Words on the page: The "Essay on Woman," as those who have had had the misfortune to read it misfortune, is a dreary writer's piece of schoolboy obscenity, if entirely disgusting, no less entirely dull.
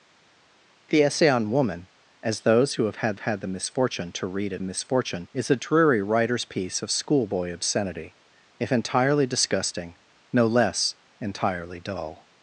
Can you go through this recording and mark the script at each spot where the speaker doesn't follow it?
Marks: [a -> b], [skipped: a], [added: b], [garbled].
The "Essay on Woman," as those who have had had the misfortune to read it misfortune, is a dreary writer's piece of schoolboy obscenity, if entirely disgusting, no less entirely dull.